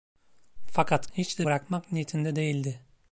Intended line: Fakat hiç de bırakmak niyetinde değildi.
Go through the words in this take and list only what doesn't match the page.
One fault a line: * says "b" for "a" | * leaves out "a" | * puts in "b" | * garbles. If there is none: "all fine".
all fine